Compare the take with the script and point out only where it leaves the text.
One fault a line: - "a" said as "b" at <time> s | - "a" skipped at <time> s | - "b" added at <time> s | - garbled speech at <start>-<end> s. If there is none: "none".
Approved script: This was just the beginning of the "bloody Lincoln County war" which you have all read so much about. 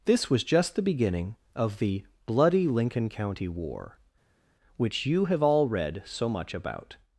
none